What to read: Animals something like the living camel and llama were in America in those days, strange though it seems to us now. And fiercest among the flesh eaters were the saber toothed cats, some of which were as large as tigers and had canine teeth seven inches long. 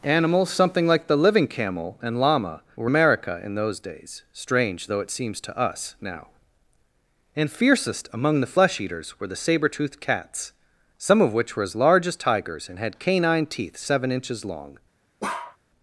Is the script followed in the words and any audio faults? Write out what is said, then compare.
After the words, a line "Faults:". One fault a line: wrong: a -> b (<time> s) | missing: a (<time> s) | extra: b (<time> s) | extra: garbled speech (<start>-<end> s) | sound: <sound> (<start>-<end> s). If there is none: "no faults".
Animals something like the living camel and llama were America in those days, strange though it seems to us now. And fiercest among the flesh eaters were the saber toothed cats, some of which were as large as tigers and had canine teeth seven inches long.
Faults:
missing: in (2.9 s)
sound: bark (15.2-15.6 s)